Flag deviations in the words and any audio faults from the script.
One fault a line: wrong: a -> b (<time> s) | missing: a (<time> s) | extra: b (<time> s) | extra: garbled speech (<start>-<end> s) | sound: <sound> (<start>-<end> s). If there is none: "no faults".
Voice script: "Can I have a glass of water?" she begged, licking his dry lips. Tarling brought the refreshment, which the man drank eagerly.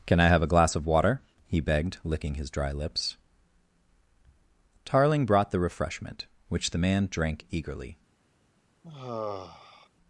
wrong: she -> he (1.4 s)
sound: sigh (8.8-9.9 s)